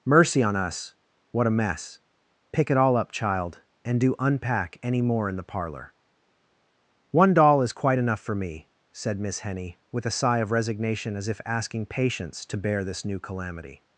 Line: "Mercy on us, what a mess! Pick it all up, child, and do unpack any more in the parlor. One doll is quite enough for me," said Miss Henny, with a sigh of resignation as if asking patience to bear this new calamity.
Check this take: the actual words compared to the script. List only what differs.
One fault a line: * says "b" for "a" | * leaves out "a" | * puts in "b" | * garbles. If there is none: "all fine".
all fine